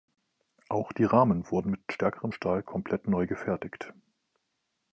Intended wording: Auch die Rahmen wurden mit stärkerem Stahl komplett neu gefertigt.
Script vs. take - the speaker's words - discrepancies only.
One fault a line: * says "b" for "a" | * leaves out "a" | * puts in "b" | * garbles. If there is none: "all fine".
all fine